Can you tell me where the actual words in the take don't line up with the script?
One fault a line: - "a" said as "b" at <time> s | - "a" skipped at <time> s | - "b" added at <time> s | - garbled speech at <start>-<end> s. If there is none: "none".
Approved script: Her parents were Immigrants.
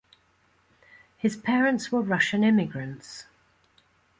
- "Her" said as "His" at 1.1 s
- "Russian" added at 2.0 s